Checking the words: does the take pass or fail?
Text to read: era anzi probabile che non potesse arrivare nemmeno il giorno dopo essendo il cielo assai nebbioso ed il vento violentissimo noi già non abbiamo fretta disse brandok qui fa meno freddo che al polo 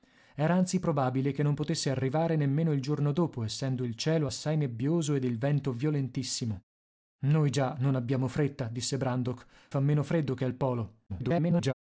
fail